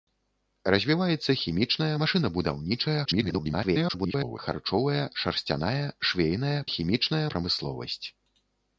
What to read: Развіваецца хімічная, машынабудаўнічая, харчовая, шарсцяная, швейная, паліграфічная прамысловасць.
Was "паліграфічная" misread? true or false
true